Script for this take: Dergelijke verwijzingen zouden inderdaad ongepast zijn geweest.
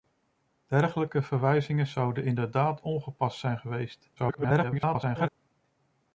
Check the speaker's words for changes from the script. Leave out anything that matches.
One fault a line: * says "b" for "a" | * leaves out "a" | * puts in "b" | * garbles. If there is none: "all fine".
* garbles